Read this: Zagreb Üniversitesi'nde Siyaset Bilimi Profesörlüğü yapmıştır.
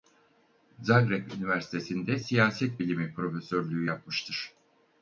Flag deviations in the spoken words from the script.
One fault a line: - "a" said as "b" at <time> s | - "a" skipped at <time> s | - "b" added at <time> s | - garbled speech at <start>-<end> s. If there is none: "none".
none